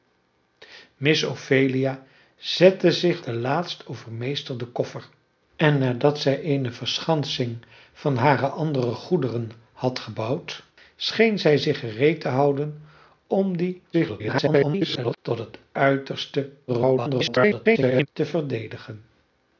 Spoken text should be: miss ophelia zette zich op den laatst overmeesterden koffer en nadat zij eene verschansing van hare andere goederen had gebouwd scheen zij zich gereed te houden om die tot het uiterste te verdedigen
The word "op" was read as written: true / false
false